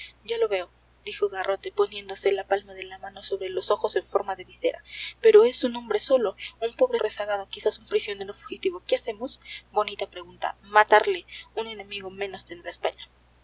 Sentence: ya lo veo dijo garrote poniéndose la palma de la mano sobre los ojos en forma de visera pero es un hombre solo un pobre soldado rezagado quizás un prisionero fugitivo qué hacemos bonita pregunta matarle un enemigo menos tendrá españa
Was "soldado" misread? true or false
true